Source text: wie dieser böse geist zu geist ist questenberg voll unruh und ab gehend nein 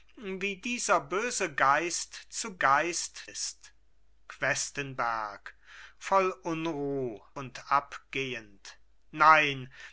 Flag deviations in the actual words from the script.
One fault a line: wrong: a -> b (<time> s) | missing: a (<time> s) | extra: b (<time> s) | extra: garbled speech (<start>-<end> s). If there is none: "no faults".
no faults